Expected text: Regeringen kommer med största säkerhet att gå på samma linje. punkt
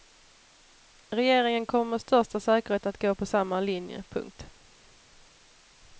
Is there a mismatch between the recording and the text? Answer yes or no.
no